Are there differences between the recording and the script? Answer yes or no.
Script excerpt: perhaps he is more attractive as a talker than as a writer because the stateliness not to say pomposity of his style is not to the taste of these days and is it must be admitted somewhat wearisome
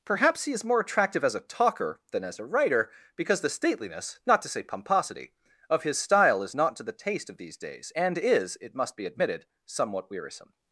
no